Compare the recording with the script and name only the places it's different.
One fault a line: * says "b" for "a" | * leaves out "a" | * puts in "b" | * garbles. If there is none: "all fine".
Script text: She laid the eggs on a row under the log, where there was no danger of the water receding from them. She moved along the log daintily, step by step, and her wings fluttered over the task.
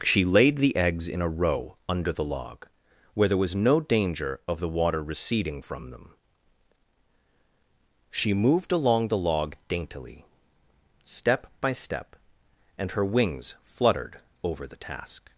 * says "in" for "on"